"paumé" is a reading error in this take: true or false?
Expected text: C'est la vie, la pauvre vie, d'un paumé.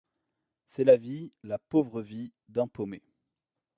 false